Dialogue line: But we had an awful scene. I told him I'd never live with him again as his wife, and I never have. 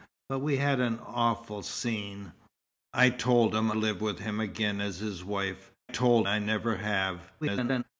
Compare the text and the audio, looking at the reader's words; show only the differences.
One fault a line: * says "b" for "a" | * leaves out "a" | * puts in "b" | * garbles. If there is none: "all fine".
* leaves out "I'd never"
* says "told" for "and"
* garbles